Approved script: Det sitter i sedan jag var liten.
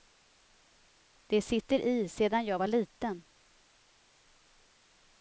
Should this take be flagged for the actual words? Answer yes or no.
no